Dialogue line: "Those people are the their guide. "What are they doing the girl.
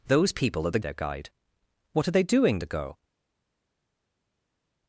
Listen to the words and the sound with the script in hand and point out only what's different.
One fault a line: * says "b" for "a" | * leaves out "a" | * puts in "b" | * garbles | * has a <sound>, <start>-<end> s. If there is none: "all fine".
all fine